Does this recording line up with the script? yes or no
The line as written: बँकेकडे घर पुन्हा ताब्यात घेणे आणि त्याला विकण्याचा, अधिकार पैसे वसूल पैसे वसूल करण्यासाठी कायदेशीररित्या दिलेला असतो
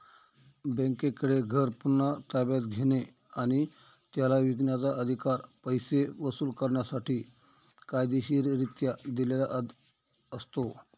no